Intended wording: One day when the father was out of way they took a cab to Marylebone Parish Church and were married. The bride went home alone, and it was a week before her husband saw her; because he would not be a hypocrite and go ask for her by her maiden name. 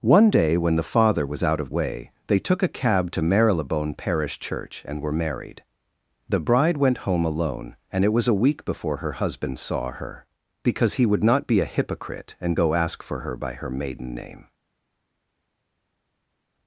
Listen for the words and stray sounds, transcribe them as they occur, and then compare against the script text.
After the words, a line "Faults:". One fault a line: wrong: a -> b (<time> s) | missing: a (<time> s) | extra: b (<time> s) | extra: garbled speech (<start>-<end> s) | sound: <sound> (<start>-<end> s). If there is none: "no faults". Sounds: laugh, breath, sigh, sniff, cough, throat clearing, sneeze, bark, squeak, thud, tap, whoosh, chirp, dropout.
One day when the father was out of way they took a cab to Marylebone Parish Church and were married. The bride went home alone, and it was a week before her husband saw her; because he would not be a hypocrite and go ask for her by her maiden name.
Faults:
no faults